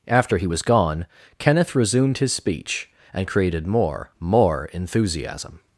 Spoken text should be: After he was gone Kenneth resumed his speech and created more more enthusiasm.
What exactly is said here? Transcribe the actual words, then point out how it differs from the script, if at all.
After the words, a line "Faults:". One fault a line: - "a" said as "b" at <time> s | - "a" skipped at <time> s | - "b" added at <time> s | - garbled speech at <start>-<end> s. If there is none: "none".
After he was gone Kenneth resumed his speech and created more more enthusiasm.
Faults:
none